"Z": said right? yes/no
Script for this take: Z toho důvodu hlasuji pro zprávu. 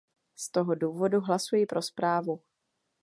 yes